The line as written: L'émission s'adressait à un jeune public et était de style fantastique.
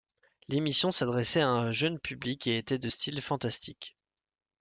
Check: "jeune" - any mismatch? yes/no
no